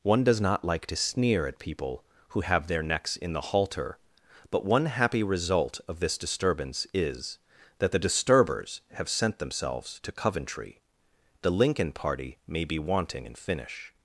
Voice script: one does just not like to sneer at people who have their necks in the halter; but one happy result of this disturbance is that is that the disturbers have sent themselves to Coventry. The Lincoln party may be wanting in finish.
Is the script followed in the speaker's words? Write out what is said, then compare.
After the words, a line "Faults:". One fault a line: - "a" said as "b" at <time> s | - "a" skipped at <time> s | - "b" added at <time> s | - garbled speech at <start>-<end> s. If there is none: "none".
one does not like to sneer at people who have their necks in the halter; but one happy result of this disturbance is that the disturbers have sent themselves to Coventry. The Lincoln party may be wanting in finish.
Faults:
- "just" skipped at 0.4 s
- "is that" skipped at 7.9 s